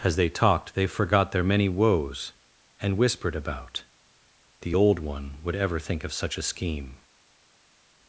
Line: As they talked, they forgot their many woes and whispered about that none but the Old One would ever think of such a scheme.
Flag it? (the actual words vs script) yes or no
yes